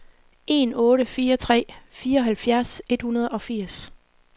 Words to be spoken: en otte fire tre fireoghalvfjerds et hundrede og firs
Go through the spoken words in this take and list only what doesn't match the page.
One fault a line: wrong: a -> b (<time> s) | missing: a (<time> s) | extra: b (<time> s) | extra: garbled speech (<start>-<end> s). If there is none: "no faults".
no faults